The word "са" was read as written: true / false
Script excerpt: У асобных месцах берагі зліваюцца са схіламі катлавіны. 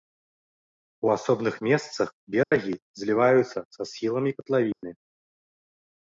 true